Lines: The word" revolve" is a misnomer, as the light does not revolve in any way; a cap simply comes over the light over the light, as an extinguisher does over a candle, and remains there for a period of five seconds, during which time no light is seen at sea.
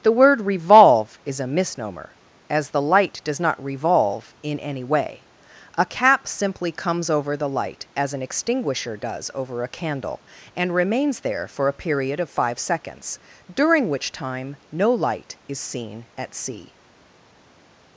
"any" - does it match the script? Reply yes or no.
yes